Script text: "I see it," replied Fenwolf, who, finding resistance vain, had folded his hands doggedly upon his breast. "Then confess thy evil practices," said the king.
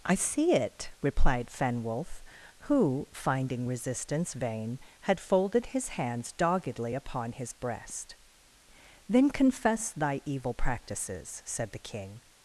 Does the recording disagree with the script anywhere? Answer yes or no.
no